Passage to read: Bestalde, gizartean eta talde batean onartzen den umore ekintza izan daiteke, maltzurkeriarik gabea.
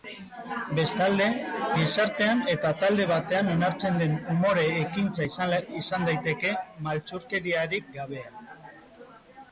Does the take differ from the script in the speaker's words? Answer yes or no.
no